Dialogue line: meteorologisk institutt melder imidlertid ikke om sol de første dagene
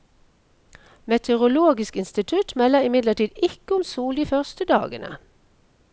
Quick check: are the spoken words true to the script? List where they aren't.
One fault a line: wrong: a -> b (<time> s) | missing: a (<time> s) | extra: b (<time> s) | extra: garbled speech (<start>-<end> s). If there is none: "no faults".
no faults